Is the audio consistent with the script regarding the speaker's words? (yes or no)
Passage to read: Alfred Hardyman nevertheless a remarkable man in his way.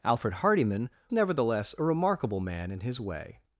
yes